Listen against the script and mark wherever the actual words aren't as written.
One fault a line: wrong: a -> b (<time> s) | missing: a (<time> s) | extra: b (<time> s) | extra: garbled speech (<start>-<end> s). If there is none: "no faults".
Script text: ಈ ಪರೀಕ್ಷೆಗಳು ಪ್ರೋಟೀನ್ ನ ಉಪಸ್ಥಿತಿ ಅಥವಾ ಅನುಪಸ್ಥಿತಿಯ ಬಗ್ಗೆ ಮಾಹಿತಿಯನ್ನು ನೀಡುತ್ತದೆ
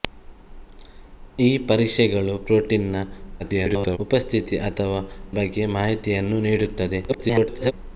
extra: garbled speech (3.4-4.0 s)
missing: ಅನುಪಸ್ಥಿತಿಯ (5.0 s)
extra: garbled speech (7.1-7.7 s)